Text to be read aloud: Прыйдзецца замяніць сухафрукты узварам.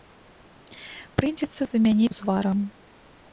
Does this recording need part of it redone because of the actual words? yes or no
yes